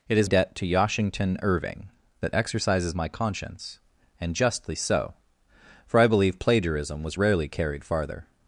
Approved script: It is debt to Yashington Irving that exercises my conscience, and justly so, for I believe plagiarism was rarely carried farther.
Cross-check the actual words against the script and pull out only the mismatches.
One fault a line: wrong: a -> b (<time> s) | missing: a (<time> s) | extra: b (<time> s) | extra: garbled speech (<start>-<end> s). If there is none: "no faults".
no faults